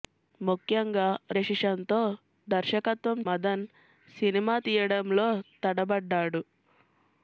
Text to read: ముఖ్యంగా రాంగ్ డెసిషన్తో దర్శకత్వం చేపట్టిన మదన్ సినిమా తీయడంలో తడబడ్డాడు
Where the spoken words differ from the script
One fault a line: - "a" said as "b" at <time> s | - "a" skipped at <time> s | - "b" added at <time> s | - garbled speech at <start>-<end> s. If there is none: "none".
- "రాంగ్" skipped at 1.1 s
- "చేపట్టిన" skipped at 3.2 s